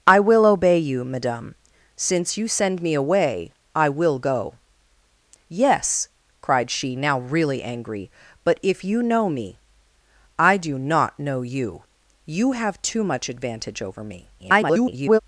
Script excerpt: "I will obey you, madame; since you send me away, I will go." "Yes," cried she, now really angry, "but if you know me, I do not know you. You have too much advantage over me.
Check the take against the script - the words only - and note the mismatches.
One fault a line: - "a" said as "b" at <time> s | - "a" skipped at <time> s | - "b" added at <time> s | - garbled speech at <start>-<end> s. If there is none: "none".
- garbled speech at 14.4-15.2 s